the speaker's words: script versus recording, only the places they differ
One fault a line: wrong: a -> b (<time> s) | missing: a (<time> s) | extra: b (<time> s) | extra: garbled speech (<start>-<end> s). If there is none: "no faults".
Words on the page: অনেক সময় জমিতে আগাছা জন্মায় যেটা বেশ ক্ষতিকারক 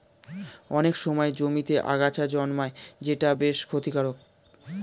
no faults